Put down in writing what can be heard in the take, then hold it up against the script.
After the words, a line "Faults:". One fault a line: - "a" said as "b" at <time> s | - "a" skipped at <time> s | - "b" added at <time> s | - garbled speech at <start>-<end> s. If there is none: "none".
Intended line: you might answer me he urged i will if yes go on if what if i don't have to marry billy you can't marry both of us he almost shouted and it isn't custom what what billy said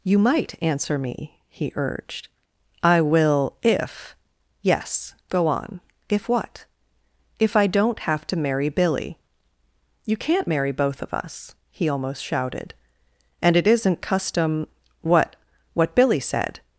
you might answer me he urged i will if yes go on if what if i don't have to marry billy you can't marry both of us he almost shouted and it isn't custom what what billy said
Faults:
none